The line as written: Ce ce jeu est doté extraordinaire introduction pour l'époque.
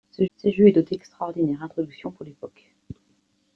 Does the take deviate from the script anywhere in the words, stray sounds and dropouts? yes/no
no